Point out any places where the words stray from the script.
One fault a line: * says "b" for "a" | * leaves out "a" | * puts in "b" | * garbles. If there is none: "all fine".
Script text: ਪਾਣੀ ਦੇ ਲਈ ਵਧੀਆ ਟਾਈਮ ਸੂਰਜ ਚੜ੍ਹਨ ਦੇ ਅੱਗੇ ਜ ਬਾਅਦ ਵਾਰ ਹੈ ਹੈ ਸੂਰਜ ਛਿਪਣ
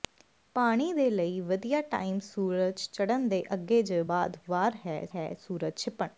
all fine